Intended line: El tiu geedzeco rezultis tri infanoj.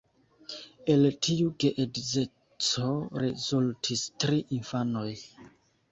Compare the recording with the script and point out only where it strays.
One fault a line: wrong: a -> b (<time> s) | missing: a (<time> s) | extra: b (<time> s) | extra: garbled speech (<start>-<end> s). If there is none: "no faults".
no faults